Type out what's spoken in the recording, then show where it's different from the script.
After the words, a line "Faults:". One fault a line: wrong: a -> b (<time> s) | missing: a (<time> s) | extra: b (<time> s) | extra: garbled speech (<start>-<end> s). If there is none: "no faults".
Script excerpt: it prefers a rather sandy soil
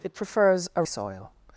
it prefers a soil
Faults:
missing: rather sandy (0.8 s)